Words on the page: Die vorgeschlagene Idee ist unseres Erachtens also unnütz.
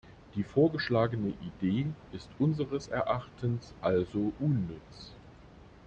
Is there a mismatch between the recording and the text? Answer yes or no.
no